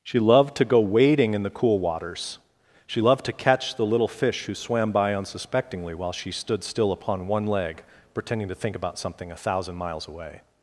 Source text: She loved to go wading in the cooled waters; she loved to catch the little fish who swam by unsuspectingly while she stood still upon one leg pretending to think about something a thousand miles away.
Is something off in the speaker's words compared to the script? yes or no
yes